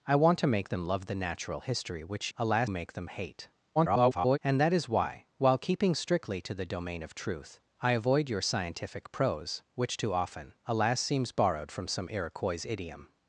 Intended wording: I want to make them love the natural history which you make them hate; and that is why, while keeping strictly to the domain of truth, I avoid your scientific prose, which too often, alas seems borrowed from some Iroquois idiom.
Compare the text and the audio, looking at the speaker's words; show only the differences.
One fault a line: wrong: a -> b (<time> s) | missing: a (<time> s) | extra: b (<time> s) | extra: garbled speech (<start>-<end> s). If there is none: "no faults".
wrong: you -> alas (2.4 s)
extra: garbled speech (3.8-4.4 s)